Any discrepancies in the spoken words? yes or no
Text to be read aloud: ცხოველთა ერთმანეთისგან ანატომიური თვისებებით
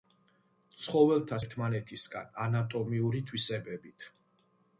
no